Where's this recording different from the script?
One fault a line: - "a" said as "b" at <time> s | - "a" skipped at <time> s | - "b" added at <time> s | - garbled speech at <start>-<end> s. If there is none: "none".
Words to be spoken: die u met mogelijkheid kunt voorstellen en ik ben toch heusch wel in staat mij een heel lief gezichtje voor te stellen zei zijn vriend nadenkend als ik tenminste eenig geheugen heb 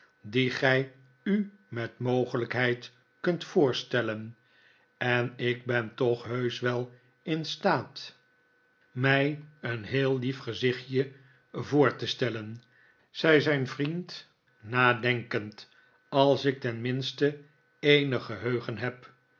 - "gij" added at 0.5 s